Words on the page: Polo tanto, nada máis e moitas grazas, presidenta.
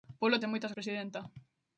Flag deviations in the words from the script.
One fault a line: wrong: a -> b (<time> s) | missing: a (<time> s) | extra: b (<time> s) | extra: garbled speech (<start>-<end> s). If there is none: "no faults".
missing: tanto nada máis (0.4 s)
missing: grazas (0.7 s)